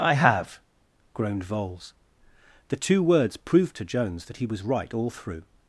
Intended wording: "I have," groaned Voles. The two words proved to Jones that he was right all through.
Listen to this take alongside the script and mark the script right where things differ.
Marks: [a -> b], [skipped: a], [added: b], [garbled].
"I have," groaned Voles. The two words proved to Jones that he was right all through.